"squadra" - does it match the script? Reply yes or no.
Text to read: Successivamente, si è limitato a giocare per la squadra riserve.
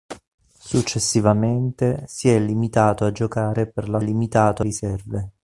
no